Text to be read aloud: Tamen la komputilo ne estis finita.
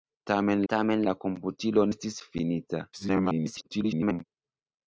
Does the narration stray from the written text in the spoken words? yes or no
yes